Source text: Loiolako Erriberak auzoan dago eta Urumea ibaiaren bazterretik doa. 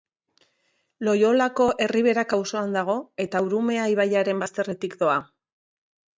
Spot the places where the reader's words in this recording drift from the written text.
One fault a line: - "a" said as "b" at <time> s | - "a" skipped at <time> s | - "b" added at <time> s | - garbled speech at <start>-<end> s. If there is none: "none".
none